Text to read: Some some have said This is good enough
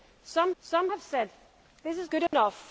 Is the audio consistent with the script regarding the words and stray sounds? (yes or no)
no